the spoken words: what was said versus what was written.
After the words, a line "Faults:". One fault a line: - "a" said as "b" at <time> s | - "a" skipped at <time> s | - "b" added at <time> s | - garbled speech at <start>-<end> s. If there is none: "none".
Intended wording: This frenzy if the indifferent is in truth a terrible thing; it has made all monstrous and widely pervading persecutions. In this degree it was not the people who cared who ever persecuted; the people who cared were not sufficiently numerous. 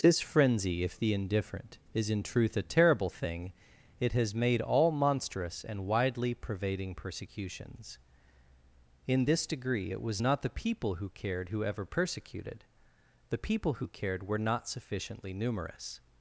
This frenzy if the indifferent is in truth a terrible thing; it has made all monstrous and widely pervading persecutions. In this degree it was not the people who cared who ever persecuted; the people who cared were not sufficiently numerous.
Faults:
none